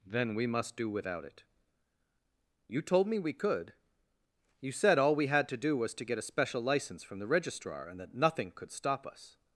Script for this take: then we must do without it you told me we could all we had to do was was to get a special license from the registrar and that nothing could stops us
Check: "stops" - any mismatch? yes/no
yes